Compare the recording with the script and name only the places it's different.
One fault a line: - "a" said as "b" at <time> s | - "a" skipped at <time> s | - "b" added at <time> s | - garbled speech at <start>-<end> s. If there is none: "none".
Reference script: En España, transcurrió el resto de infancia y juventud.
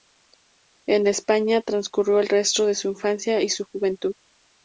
- "su" added at 2.7 s
- "su" added at 3.5 s